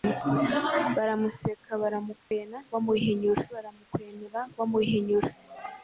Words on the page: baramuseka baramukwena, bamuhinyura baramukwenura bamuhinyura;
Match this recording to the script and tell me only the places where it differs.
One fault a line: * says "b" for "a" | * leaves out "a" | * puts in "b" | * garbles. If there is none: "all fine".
all fine